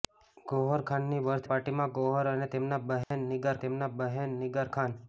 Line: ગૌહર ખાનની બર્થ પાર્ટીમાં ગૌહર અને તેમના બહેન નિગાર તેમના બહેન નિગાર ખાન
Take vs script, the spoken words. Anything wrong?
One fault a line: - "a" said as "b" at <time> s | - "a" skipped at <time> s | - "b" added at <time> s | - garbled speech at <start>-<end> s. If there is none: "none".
none